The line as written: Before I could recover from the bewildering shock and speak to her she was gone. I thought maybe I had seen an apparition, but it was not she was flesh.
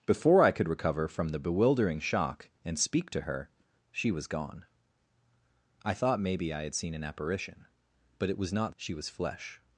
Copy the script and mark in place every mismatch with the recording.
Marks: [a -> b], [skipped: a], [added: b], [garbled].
Before I could recover from the bewildering shock and speak to her she was gone. I thought maybe I had seen an apparition, but it was not she was flesh.